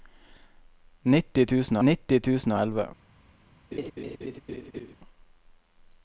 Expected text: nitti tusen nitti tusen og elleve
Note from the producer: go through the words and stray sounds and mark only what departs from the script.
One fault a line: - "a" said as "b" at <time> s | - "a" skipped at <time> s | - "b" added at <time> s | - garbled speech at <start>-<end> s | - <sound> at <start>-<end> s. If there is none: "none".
- laugh at 3.7-5.0 s